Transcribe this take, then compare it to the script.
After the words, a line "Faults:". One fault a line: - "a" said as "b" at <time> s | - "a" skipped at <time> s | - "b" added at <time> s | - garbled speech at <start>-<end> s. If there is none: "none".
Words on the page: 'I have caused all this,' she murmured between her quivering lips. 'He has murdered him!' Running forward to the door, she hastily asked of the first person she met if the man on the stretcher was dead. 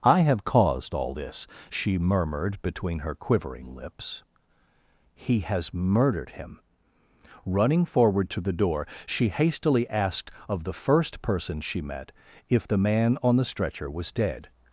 'I have caused all this,' she murmured between her quivering lips. 'He has murdered him!' Running forward to the door, she hastily asked of the first person she met if the man on the stretcher was dead.
Faults:
none